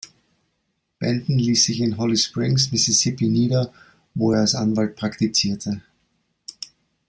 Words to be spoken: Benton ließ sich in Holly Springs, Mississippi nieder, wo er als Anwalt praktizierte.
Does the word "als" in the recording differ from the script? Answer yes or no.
no